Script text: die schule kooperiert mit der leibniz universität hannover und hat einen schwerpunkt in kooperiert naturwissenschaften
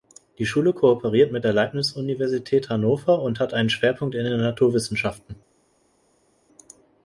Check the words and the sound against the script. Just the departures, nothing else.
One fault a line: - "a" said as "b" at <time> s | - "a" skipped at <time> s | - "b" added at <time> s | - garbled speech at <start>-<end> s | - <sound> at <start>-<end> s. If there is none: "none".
- "kooperiert" said as "den" at 4.3 s